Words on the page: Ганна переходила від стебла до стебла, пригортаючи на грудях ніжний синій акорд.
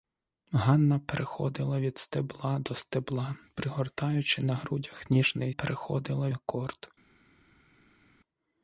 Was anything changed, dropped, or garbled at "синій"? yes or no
yes